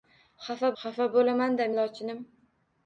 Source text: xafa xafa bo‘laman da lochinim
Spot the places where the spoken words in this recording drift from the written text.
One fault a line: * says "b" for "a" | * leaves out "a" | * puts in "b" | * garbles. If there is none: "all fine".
all fine